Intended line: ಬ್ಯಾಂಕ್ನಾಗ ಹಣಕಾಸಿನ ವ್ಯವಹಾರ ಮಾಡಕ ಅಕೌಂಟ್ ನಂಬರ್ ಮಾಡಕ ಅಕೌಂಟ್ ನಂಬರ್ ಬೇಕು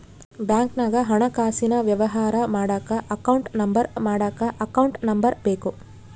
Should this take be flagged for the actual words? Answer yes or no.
no